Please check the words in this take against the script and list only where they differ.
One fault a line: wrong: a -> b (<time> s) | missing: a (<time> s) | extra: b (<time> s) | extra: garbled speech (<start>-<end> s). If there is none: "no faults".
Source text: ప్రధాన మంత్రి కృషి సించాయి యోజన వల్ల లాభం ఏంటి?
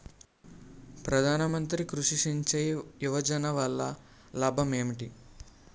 no faults